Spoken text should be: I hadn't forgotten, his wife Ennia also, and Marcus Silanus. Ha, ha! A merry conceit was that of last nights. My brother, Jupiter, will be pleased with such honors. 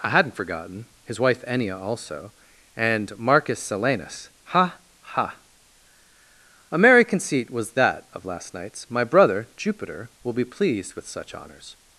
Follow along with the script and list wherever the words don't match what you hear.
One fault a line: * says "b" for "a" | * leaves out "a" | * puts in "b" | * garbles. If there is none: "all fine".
all fine